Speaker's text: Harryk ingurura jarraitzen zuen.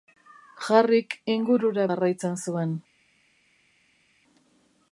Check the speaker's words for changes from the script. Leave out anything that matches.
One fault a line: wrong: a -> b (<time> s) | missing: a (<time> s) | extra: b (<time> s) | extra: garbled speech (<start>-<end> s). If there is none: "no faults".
no faults